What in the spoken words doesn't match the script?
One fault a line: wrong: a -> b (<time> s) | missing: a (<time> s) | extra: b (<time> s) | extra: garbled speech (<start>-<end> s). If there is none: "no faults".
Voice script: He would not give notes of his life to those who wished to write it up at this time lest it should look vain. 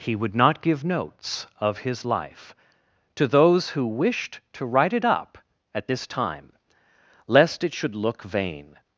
no faults